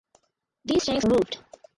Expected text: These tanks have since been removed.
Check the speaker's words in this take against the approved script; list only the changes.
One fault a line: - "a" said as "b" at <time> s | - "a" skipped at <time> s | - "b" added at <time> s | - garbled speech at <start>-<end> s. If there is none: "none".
- "have since been" skipped at 1.1 s